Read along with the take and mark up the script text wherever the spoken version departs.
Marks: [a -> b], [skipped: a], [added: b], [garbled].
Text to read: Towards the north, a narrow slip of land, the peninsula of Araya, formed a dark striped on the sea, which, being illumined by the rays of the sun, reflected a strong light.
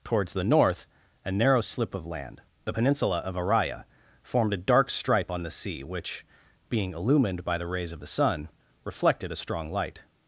Towards the north, a narrow slip of land, the peninsula of Araya, formed a dark [striped -> stripe] on the sea, which, being illumined by the rays of the sun, reflected a strong light.